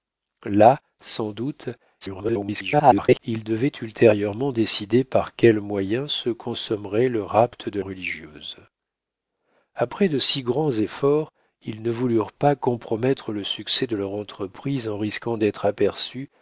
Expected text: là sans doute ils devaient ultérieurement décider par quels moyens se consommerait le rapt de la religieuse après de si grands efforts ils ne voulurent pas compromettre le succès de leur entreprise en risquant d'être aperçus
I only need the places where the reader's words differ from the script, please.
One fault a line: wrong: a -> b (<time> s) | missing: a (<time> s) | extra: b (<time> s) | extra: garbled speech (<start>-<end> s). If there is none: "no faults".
extra: garbled speech (2.0-3.2 s)
missing: la (7.8 s)